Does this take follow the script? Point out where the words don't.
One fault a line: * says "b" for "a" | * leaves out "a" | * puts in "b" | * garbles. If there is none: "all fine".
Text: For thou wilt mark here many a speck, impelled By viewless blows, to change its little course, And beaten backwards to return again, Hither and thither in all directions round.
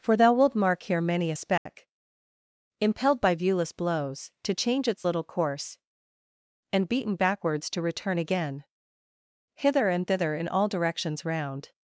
all fine